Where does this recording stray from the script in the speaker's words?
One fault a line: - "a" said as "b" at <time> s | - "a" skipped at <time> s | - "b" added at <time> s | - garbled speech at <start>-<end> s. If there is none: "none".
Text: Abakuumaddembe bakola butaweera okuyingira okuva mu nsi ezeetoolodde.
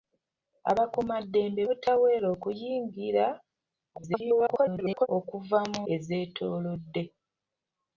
- "bakola" skipped at 1.6 s
- garbled speech at 3.9-5.1 s
- "nsi" skipped at 5.8 s